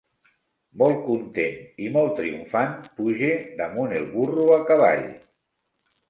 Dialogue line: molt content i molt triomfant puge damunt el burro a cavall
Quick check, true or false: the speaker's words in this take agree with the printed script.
true